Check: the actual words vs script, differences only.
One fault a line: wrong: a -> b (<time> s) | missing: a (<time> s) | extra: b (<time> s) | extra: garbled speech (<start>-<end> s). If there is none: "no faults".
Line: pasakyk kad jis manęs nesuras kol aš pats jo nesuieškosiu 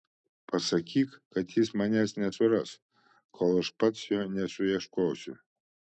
no faults